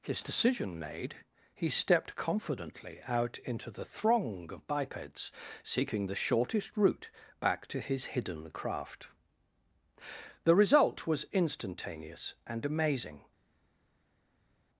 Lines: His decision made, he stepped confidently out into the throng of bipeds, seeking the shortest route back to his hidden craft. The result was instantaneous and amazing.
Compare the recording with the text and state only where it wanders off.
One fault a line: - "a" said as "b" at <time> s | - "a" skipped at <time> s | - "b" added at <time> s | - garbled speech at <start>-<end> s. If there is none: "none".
none